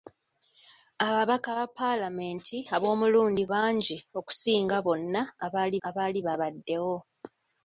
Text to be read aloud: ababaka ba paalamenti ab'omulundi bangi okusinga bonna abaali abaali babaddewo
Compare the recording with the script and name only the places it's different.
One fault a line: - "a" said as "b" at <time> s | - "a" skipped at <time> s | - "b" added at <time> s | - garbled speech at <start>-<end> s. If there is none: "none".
none